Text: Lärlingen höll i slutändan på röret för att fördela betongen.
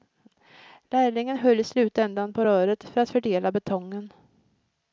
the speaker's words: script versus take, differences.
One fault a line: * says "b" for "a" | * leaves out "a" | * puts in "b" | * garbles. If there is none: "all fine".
all fine